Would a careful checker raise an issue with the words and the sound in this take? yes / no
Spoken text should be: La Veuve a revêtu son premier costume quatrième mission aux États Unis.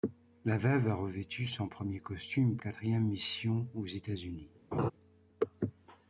yes